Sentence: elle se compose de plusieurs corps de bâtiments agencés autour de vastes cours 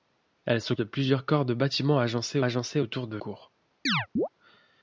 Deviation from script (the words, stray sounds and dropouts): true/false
true